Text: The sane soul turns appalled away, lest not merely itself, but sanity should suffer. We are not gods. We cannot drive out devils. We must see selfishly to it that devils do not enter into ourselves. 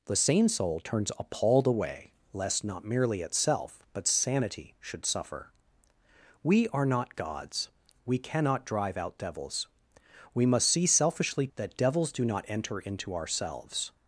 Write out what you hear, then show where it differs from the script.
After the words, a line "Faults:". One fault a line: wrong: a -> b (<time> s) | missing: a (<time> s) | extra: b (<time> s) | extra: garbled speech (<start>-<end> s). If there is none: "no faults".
The sane soul turns appalled away, lest not merely itself, but sanity should suffer. We are not gods. We cannot drive out devils. We must see selfishly that devils do not enter into ourselves.
Faults:
missing: to it (11.5 s)